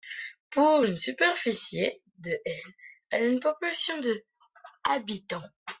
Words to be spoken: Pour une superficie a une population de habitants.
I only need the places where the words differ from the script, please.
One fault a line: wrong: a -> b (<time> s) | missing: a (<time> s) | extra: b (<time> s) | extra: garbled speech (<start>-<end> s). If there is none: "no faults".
extra: de elle (2.2 s)